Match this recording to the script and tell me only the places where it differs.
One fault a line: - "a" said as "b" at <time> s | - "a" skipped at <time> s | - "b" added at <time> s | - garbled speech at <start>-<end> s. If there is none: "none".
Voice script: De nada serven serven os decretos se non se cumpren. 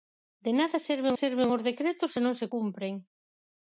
none